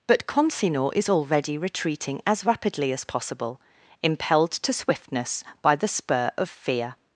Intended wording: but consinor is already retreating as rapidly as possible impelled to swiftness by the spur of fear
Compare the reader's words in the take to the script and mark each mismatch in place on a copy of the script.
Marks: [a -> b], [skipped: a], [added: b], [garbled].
but consinor is already retreating as rapidly as possible impelled to swiftness by the spur of fear